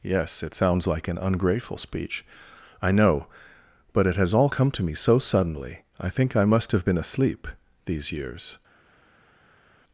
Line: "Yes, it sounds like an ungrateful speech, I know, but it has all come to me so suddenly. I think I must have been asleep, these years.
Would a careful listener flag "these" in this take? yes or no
no